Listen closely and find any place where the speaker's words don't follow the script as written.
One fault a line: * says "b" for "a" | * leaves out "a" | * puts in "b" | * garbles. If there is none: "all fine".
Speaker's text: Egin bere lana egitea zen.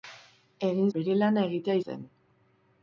all fine